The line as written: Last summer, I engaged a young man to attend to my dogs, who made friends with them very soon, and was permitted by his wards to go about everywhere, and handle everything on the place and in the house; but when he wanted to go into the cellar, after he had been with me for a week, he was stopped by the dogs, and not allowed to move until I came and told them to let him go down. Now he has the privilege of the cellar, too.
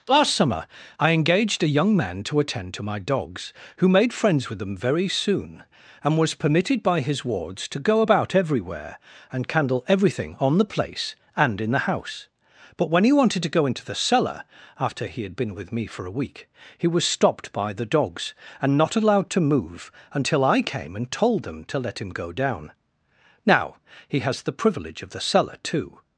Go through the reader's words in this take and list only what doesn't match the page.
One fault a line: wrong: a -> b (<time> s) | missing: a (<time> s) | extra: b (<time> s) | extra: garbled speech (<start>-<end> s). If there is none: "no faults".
wrong: handle -> candle (9.5 s)